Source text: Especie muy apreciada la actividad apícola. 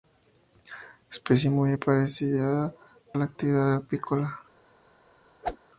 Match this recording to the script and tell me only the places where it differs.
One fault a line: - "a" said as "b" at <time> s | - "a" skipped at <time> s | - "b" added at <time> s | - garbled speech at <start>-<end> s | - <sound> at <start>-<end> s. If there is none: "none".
- whoosh at 5.4-5.6 s